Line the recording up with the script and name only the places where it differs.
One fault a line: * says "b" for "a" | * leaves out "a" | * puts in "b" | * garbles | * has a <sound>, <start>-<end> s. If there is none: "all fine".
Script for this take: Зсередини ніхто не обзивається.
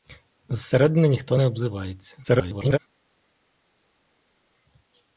* garbles